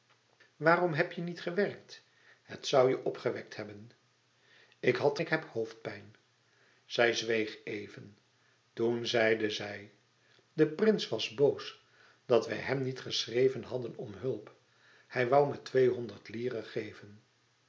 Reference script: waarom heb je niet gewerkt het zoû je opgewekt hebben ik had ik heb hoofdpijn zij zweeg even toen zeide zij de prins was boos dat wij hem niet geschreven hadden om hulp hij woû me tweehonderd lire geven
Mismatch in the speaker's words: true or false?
false